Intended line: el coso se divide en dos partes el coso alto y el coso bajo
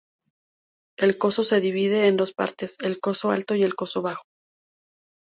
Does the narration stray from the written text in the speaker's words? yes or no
no